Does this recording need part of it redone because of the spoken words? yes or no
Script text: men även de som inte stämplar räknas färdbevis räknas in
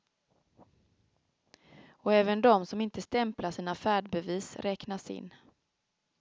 yes